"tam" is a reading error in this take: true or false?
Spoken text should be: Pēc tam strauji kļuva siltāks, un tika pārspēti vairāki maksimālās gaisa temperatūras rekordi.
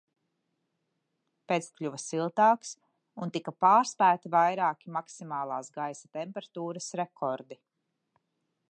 true